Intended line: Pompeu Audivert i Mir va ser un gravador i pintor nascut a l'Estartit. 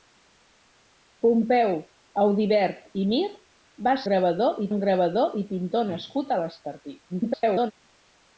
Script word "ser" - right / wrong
wrong